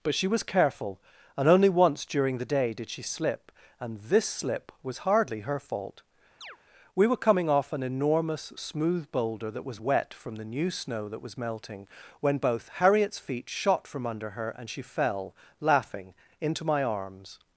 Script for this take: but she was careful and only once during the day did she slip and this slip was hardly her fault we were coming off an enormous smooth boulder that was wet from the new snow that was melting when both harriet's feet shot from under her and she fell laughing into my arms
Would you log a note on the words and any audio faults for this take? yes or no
yes